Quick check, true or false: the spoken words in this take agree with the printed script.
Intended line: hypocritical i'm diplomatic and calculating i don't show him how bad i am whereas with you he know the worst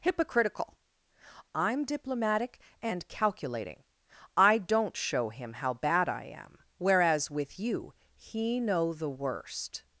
true